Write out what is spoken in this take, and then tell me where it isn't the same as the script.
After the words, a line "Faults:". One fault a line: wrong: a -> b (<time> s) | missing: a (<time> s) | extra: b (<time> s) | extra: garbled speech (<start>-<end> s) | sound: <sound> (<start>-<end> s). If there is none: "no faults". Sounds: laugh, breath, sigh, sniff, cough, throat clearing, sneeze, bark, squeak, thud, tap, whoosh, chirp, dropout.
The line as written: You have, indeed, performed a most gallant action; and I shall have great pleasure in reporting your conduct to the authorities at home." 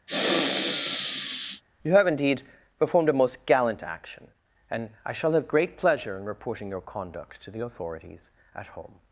You have, indeed, performed a most gallant action; and I shall have great pleasure in reporting your conduct to the authorities at home."
Faults:
sound: sniff (0.1-1.6 s)